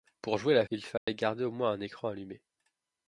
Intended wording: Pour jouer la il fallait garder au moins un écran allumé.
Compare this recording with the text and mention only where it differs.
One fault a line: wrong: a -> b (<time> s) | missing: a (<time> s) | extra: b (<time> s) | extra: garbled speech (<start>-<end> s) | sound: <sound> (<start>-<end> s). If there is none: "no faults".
sound: dropout (1.0-1.1 s)